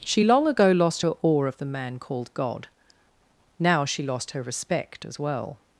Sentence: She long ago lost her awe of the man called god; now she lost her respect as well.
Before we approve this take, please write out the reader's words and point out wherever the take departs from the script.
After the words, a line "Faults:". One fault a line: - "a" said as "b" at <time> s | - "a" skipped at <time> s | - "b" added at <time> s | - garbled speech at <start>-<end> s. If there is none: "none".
She long ago lost her awe of the man called god; now she lost her respect as well.
Faults:
none